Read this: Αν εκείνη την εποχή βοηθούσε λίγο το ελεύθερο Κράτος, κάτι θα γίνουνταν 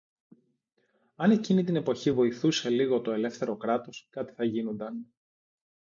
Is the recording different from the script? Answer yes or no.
no